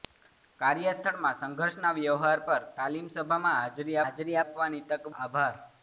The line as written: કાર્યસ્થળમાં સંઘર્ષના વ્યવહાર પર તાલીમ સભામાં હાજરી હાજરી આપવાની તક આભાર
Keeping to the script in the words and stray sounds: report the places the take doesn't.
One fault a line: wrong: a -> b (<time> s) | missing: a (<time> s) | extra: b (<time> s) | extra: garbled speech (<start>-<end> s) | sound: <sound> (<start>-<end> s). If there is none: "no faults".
no faults